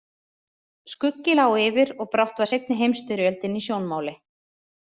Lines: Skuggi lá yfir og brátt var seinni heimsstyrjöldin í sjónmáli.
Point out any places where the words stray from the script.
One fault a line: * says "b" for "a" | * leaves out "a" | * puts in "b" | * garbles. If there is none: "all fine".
all fine